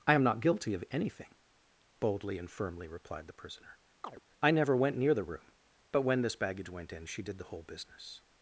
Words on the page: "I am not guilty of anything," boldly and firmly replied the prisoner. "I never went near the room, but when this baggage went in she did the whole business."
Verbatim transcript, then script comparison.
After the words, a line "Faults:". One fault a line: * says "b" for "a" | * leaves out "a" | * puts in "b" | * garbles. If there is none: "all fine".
"I am not guilty of anything," boldly and firmly replied the prisoner. "I never went near the room, but when this baggage went in she did the whole business."
Faults:
all fine